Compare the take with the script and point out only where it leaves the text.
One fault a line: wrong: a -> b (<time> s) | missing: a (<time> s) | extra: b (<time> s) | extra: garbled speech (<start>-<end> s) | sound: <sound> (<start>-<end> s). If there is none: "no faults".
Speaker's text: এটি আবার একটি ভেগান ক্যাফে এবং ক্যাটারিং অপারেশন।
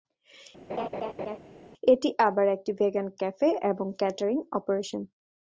sound: laugh (0.7-1.4 s)